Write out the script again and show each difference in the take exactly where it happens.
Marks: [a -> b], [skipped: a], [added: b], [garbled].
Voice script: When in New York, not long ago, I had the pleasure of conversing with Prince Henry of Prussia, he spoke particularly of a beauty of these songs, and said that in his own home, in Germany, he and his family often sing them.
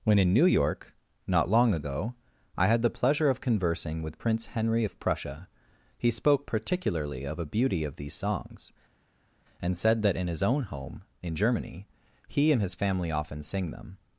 When in New York, not long ago, I had the pleasure of conversing with Prince Henry of Prussia, he spoke particularly of a beauty of these songs, and said that in his own home, in Germany, he and his family often sing them.